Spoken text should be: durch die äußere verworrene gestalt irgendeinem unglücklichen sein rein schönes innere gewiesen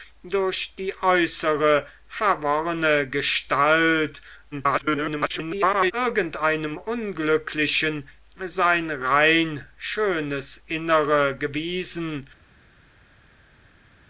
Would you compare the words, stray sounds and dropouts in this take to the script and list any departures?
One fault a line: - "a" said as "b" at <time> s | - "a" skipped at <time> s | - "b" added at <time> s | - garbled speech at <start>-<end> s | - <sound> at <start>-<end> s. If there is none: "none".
- garbled speech at 4.5-5.9 s